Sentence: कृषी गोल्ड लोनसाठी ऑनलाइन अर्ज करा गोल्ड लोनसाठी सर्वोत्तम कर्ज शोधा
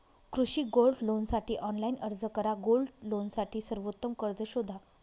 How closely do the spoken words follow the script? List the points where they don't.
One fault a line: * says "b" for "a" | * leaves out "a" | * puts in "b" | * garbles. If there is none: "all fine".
all fine